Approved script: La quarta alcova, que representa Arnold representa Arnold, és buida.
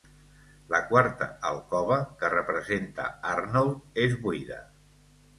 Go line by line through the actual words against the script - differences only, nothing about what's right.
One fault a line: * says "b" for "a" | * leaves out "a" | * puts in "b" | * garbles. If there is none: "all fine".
* leaves out "representa Arnold"